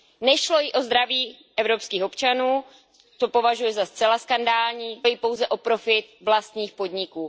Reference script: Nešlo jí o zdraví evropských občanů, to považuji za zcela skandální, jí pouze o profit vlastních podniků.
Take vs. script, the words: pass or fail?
pass